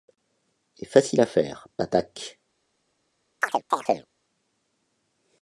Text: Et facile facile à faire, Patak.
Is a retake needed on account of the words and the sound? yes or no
yes